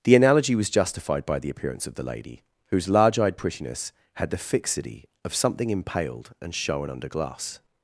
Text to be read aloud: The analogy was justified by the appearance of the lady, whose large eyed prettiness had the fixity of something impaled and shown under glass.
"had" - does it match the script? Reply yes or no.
yes